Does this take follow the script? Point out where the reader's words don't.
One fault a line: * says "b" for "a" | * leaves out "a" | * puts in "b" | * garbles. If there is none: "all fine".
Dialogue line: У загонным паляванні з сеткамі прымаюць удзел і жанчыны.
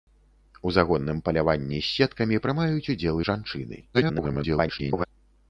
* garbles